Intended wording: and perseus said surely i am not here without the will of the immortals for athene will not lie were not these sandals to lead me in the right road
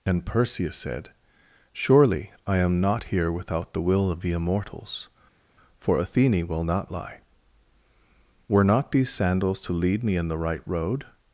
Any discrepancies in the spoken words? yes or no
no